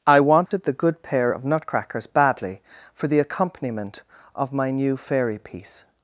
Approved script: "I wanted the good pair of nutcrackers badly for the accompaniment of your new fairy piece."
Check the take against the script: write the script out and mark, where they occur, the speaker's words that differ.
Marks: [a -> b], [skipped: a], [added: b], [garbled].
"I wanted the good pair of nutcrackers badly for the accompaniment of [your -> my] new fairy piece."